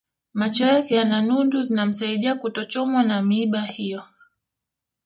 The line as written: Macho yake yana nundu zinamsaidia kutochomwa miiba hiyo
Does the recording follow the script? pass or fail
fail